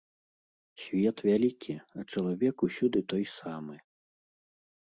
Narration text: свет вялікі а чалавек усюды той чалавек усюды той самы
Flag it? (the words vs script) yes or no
yes